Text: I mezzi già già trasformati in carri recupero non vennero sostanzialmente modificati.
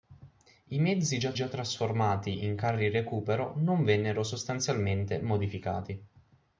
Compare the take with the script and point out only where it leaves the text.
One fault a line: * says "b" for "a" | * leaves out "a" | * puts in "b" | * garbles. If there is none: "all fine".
all fine